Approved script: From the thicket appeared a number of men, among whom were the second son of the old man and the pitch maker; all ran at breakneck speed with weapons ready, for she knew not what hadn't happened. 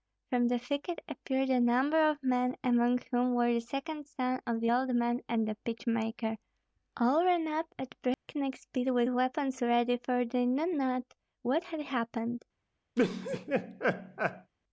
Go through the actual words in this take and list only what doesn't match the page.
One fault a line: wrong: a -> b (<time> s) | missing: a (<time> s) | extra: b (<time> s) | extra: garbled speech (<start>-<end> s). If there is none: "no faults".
extra: up (7.5 s)
wrong: she -> they (10.2 s)
wrong: hadn't -> had (11.6 s)